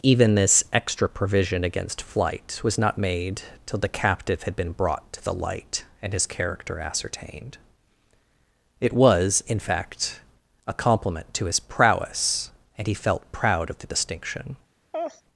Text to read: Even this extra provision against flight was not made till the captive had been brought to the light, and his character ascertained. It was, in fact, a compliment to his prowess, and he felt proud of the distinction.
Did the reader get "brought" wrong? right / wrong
right